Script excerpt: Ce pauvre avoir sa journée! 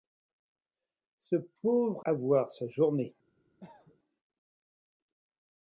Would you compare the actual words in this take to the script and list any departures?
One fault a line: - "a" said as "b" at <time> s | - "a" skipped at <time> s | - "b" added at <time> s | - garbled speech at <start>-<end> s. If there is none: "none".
none